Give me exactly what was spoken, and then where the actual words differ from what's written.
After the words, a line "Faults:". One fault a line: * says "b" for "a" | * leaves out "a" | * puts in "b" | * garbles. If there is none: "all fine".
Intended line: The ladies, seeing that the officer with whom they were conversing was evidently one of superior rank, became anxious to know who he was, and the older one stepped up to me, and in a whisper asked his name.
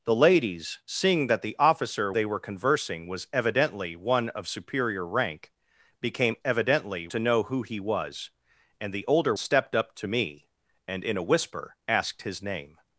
The ladies, seeing that the officer they were conversing was evidently one of superior rank, became evidently to know who he was, and the older stepped up to me, and in a whisper asked his name.
Faults:
* leaves out "with whom"
* says "evidently" for "anxious"
* leaves out "one"